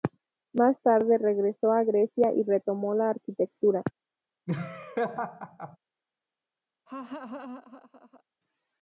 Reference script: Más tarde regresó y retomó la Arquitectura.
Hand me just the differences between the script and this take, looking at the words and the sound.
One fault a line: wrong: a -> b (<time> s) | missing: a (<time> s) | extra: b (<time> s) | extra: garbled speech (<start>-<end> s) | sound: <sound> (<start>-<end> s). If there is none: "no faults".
extra: a Grecia (1.7 s)
sound: laugh (4.5-5.8 s)
sound: laugh (6.9-8.2 s)